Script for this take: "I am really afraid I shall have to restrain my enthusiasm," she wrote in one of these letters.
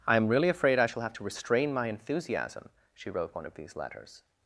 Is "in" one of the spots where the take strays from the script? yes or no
yes